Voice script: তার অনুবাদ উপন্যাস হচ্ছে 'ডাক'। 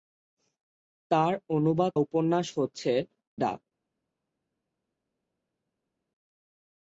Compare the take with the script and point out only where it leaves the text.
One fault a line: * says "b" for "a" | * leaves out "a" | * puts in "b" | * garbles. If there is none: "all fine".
all fine